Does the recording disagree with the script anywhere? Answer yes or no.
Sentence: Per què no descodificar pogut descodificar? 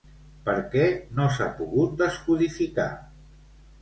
yes